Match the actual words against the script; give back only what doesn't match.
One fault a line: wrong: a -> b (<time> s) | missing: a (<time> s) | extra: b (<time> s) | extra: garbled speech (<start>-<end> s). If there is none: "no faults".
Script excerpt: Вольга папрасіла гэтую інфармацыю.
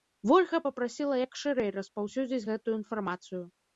extra: як шырэй распаўсюдзіць (1.2 s)